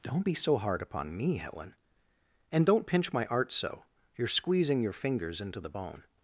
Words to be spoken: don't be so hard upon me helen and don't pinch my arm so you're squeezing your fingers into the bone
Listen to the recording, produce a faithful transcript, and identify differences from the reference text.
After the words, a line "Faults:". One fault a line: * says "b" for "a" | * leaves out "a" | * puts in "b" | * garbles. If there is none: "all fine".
don't be so hard upon me helen and don't pinch my art so you're squeezing your fingers into the bone
Faults:
* says "art" for "arm"